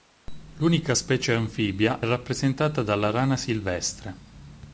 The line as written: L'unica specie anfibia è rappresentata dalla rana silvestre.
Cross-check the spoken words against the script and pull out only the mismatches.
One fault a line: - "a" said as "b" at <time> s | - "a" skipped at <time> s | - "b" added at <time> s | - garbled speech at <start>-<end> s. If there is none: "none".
- "è" skipped at 2.0 s